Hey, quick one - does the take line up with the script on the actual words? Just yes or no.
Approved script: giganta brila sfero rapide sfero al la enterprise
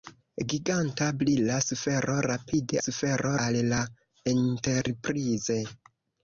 yes